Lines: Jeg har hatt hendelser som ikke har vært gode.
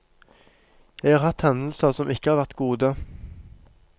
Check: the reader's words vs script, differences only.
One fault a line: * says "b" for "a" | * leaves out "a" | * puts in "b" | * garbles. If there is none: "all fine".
all fine